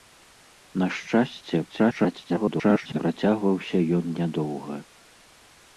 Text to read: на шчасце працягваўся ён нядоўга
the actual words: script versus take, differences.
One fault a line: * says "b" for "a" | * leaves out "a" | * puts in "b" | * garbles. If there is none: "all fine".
* garbles